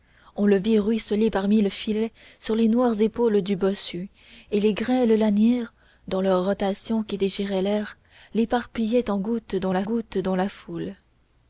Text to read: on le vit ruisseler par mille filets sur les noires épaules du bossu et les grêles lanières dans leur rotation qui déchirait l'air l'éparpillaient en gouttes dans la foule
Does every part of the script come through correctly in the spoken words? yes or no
no